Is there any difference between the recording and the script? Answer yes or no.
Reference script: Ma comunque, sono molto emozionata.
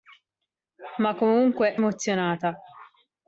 yes